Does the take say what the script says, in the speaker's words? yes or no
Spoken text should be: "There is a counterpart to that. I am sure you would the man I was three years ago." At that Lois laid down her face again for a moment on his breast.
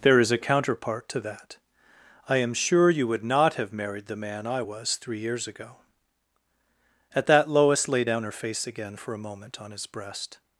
no